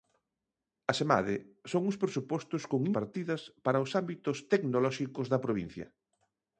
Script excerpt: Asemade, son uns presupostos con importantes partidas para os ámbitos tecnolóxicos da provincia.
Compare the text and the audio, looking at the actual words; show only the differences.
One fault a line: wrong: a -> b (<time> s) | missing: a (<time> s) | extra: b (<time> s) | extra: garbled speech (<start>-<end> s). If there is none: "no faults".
missing: importantes (2.8 s)